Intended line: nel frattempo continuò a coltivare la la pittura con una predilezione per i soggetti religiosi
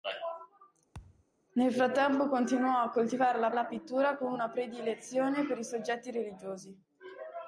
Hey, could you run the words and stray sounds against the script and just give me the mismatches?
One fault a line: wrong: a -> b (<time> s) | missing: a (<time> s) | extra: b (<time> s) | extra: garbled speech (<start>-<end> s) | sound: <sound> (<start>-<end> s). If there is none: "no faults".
sound: thud (0.9-1.3 s)